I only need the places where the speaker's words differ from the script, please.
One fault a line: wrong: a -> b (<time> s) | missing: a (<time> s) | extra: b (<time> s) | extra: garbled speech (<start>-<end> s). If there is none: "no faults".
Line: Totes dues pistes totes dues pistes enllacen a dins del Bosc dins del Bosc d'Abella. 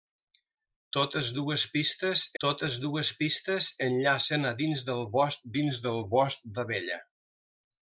no faults